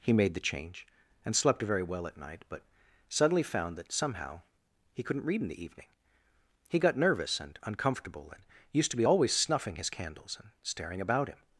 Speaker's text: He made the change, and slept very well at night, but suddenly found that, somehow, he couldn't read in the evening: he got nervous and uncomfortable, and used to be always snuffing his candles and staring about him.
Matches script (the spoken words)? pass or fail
pass